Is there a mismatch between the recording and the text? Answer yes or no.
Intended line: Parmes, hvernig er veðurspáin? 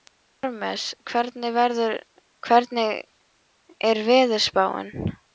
no